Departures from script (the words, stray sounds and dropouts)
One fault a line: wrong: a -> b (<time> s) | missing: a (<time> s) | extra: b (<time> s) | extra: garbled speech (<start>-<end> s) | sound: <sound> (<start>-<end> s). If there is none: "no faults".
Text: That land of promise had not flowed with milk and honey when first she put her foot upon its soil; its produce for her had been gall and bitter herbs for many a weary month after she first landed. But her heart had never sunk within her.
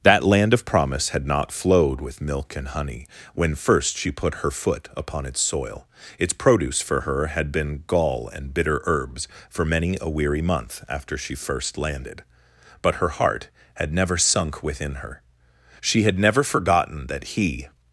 extra: She had never forgotten that he (15.8 s)